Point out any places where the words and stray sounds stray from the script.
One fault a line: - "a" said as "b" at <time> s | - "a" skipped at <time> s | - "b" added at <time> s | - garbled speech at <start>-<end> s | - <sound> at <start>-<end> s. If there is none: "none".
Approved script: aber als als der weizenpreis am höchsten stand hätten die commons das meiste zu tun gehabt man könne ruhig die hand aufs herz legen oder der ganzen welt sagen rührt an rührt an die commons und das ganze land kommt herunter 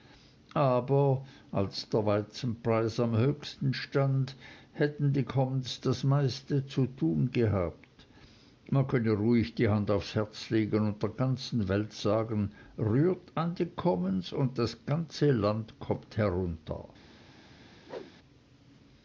- "als" skipped at 1.9 s
- "oder" said as "und" at 10.9 s
- "rührt an" skipped at 13.5 s
- whoosh at 17.8-18.1 s